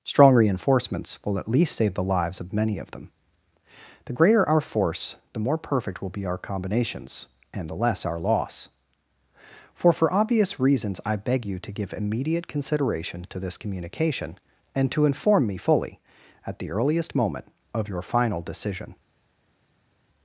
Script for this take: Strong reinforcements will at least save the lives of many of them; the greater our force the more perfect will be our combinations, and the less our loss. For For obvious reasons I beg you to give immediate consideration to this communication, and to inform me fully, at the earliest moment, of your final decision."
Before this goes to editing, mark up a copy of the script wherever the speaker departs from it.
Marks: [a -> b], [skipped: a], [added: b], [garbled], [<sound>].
Strong reinforcements will at least save the lives of many of them; the greater our force the more perfect will be our combinations, and the less our loss. For For obvious reasons I beg you to give immediate consideration to this communication, and to inform me fully, at the earliest moment, of your final decision."